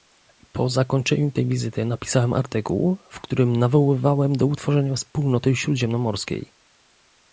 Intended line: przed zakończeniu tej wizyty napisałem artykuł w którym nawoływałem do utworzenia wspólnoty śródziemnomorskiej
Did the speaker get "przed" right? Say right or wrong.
wrong